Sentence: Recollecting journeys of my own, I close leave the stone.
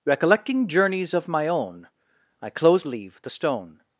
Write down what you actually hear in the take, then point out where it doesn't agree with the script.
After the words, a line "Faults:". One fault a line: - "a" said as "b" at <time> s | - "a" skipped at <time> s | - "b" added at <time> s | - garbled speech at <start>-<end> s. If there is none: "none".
Recollecting journeys of my own, I close leave the stone.
Faults:
none